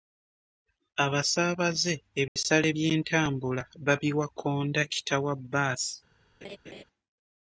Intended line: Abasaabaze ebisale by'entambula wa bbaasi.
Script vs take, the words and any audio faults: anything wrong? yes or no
yes